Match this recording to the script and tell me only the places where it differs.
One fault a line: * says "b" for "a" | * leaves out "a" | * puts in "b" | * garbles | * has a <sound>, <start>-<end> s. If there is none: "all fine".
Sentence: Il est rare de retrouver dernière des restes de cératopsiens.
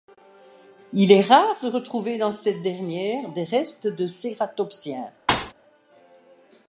* puts in "dans cette"
* has a thud, 5.3-5.5 s